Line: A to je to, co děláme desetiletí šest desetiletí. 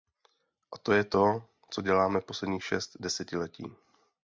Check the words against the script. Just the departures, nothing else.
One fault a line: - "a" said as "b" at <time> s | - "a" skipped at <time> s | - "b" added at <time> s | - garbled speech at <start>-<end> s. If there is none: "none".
- "desetiletí" said as "posledních" at 2.2 s